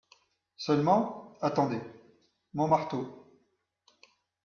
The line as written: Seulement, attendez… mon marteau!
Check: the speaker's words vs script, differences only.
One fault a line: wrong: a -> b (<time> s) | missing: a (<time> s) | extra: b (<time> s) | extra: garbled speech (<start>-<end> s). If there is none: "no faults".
no faults